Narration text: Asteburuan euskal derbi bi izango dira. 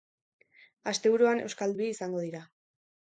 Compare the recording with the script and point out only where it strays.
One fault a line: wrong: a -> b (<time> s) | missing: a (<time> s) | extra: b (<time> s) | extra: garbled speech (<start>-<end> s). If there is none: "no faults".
missing: derbi (1.8 s)